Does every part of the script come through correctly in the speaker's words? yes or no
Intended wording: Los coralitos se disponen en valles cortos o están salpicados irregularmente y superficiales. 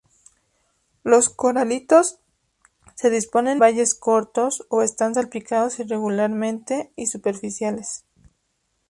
no